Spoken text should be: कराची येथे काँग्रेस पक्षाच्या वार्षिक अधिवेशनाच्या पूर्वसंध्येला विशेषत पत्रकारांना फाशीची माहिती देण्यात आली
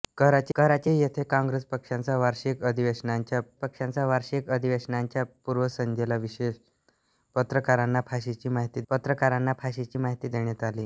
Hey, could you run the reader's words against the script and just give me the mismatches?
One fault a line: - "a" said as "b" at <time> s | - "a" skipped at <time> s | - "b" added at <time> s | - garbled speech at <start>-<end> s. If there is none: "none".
- "कराची" added at 0.5 s
- "पक्षाच्या वार्षिक अधिवेशनाच्या" added at 3.6 s
- "पत्रकारांना फाशीची माहिती" added at 8.9 s